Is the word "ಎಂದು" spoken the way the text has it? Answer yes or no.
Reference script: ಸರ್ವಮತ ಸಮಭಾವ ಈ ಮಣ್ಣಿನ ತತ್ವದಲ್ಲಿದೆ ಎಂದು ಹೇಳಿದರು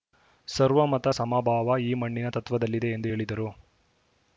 yes